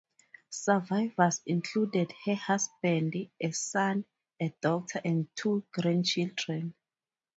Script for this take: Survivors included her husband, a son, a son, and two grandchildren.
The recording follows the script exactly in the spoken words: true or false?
false